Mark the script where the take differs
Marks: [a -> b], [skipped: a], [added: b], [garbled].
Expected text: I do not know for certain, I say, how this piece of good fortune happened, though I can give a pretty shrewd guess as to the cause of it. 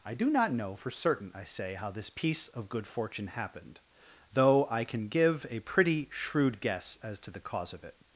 I do not know for certain, I say, how this piece of good fortune happened, though I can give a pretty shrewd guess as to the cause of it.